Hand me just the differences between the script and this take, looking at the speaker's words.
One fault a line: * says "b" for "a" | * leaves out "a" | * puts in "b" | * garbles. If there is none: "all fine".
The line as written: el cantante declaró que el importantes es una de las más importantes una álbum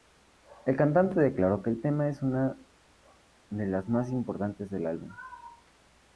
* says "tema" for "importantes"
* says "del" for "una"